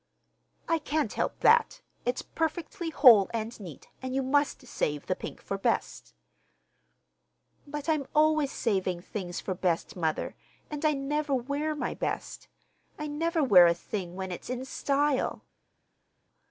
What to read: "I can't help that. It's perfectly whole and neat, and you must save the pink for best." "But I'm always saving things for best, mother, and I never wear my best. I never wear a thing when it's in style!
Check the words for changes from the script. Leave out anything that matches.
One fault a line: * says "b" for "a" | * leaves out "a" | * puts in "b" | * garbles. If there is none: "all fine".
all fine